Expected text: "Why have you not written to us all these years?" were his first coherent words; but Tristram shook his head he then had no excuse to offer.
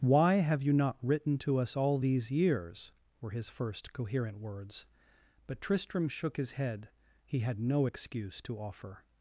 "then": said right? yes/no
no